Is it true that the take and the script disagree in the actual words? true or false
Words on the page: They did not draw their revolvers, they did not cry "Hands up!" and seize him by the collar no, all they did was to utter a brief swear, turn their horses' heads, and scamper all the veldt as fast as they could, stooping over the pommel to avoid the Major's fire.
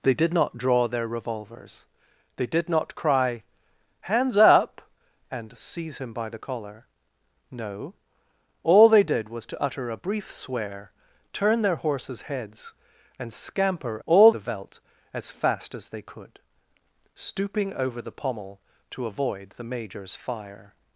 false